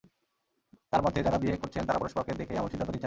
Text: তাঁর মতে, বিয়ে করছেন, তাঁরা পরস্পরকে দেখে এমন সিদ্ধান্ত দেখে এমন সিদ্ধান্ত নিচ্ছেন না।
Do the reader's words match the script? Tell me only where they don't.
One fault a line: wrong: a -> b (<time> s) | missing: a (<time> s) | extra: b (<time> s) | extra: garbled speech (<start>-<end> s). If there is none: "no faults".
extra: যাঁরা (1.2 s)
missing: দেখে এমন সিদ্ধান্ত (2.9 s)